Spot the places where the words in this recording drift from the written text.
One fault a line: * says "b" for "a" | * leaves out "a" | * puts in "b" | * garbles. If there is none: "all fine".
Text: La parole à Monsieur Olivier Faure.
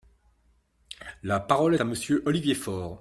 all fine